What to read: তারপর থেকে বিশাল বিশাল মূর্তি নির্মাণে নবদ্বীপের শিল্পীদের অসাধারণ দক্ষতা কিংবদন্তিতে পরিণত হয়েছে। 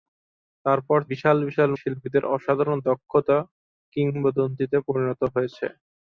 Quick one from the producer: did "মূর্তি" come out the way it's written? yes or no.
no